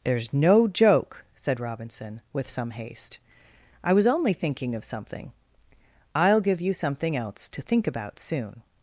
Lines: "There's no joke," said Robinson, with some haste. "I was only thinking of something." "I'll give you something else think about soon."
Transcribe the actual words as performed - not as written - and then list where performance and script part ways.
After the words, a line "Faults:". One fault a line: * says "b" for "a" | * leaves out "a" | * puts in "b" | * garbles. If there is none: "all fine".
"There's no joke," said Robinson, with some haste. "I was only thinking of something." "I'll give you something else to think about soon."
Faults:
* puts in "to"